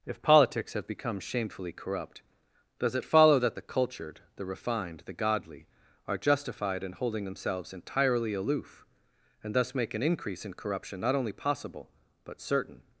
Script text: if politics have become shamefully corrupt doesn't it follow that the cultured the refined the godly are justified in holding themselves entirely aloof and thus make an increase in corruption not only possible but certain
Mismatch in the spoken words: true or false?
true